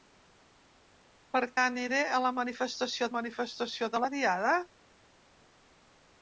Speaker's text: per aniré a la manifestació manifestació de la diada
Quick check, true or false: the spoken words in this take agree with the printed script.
true